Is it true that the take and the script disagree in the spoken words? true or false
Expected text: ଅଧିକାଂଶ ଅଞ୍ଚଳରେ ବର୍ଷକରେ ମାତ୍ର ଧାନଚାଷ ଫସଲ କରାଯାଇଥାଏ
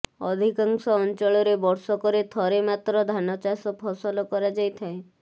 true